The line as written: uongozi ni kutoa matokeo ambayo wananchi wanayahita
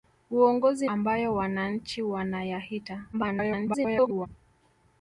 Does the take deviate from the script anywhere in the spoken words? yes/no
yes